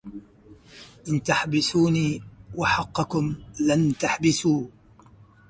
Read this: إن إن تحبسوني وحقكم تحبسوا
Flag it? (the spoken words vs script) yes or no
yes